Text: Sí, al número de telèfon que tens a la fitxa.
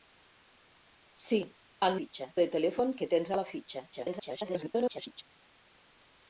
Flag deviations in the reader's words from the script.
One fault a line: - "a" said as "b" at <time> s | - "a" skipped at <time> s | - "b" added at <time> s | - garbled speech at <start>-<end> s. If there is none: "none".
- "número" said as "fitxa" at 2.0 s
- garbled speech at 3.9-5.2 s